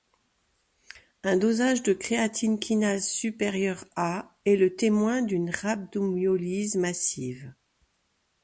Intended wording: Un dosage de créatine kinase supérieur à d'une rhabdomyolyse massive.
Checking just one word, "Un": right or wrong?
right